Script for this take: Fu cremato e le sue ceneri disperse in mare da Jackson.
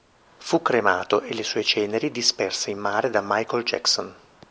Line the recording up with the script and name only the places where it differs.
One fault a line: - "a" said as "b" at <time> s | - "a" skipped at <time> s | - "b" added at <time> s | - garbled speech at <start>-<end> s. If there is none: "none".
- "Michael" added at 3.2 s